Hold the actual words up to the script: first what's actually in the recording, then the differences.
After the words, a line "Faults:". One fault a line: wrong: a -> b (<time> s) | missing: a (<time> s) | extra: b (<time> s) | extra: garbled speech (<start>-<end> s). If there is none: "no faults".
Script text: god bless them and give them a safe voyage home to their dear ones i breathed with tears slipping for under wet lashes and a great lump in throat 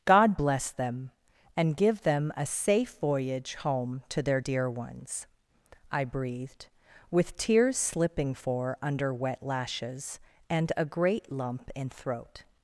god bless them and give them a safe voyage home to their dear ones i breathed with tears slipping for under wet lashes and a great lump in throat
Faults:
no faults